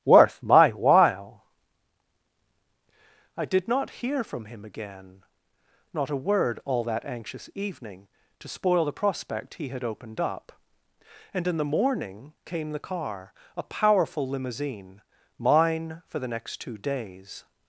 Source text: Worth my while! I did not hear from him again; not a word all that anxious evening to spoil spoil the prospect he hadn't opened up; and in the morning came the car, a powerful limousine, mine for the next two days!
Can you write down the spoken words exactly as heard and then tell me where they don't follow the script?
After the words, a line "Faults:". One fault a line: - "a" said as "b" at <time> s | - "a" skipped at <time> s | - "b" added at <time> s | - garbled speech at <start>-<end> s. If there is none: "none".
Worth my while! I did not hear from him again; not a word all that anxious evening to spoil the prospect he had opened up; and in the morning came the car, a powerful limousine, mine for the next two days!
Faults:
- "spoil" skipped at 8.8 s
- "hadn't" said as "had" at 9.7 s